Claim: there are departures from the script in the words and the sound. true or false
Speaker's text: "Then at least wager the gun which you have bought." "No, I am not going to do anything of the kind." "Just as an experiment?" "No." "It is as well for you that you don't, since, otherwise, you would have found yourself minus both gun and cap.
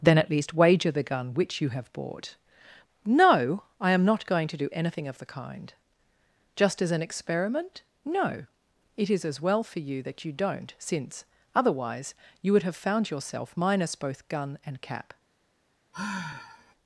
true